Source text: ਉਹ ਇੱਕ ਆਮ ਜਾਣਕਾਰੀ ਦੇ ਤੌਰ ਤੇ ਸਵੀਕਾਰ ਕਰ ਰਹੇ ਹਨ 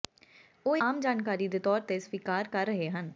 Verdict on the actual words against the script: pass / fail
fail